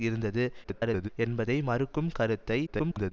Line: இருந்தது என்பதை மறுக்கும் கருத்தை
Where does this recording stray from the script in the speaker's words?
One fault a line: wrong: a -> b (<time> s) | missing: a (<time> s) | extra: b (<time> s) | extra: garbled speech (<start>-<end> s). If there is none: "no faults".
extra: garbled speech (0.6-1.1 s)
extra: garbled speech (2.7-3.1 s)